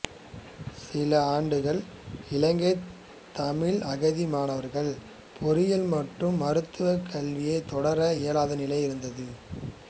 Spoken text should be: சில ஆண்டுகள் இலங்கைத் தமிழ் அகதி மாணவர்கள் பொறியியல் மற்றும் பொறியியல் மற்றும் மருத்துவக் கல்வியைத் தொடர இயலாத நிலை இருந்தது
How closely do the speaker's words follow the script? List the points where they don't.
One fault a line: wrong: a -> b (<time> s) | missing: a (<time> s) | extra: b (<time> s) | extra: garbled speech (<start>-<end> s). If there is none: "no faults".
missing: பொறியியல் மற்றும் (6.4 s)